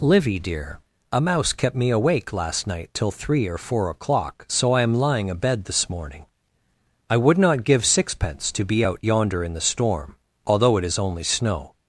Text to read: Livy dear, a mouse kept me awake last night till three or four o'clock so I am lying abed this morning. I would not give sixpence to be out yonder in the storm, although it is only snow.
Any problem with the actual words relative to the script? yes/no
no